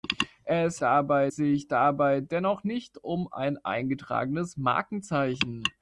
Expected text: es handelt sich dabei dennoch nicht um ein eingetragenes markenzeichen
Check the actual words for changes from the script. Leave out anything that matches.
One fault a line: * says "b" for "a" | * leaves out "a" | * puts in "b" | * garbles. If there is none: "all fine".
* says "dabei" for "handelt"